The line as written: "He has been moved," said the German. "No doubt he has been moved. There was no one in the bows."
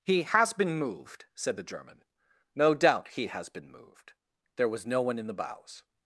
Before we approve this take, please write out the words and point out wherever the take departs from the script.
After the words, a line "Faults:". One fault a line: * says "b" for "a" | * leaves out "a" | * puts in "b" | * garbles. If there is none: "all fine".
"He has been moved," said the German. "No doubt he has been moved. There was no one in the bows."
Faults:
all fine